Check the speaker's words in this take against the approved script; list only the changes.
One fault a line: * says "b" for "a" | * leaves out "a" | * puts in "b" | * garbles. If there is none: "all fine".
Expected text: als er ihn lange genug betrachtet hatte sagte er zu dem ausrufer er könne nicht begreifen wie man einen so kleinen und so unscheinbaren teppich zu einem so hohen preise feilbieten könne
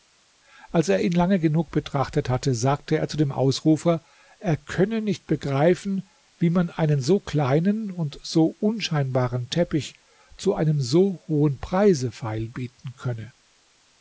all fine